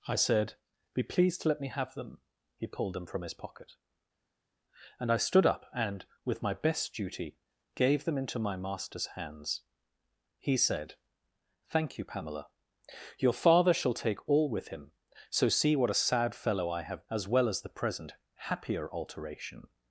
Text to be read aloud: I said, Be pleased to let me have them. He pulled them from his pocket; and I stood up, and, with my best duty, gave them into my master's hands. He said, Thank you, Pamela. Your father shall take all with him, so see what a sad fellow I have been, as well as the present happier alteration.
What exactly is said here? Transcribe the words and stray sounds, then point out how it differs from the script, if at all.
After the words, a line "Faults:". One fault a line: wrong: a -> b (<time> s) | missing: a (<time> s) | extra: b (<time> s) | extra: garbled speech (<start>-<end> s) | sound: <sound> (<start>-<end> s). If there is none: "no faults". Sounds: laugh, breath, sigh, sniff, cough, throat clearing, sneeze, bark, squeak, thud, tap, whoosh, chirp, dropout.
I said, Be pleased to let me have them. He pulled them from his pocket; and I stood up, and, with my best duty, gave them into my master's hands. He said, Thank you, Pamela. Your father shall take all with him, so see what a sad fellow I have as well as the present happier alteration.
Faults:
missing: been (17.1 s)